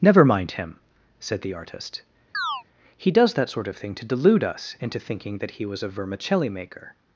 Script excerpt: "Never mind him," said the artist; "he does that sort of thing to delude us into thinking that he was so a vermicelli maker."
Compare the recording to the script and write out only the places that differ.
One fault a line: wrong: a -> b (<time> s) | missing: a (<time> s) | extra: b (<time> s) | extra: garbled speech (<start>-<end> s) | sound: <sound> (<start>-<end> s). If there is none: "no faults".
sound: chirp (2.3-2.6 s)
missing: so (5.8 s)